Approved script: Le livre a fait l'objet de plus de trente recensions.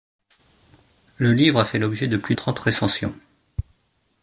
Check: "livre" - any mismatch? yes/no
no